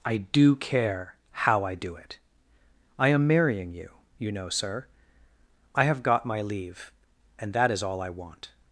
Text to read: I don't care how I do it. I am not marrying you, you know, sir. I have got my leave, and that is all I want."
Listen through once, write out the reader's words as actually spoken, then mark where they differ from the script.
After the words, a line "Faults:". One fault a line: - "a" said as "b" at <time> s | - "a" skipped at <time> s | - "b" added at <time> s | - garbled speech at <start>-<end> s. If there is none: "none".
I do care how I do it. I am marrying you, you know, sir. I have got my leave, and that is all I want."
Faults:
- "don't" said as "do" at 0.2 s
- "not" skipped at 3.3 s